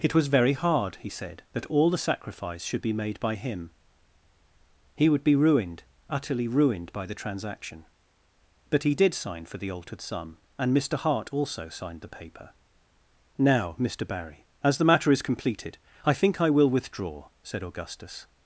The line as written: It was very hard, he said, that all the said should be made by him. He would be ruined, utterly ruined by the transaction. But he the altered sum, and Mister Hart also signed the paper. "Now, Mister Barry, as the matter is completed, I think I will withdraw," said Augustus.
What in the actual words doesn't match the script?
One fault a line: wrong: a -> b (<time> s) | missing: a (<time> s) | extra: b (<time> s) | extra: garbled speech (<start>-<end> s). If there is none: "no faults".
wrong: said -> sacrifice (2.0 s)
extra: did sign for (8.9 s)